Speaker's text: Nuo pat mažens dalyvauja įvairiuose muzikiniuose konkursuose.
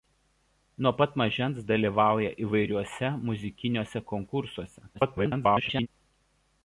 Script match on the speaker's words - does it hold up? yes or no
no